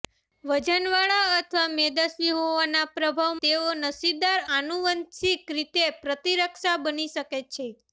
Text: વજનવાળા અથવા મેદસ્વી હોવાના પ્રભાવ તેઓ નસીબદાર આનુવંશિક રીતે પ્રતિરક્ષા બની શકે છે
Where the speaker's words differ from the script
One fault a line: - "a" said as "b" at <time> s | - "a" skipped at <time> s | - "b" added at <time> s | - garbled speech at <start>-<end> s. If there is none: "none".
none